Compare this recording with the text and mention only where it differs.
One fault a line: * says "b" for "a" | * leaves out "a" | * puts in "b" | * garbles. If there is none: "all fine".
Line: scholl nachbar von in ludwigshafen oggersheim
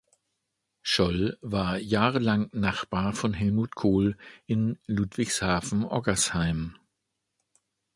* puts in "war jahrelang"
* puts in "helmut kohl"